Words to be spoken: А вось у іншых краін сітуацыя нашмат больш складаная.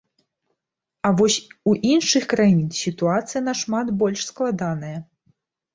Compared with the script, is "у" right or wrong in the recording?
right